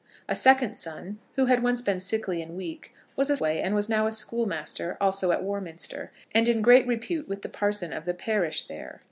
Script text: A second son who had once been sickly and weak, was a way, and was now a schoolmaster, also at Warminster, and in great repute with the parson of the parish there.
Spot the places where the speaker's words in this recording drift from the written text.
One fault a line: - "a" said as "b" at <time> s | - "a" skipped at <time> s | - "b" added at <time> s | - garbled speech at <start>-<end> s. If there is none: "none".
none